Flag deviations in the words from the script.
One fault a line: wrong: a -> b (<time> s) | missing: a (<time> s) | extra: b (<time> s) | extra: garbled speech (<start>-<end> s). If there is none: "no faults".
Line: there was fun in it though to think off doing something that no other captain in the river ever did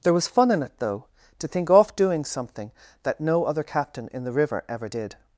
no faults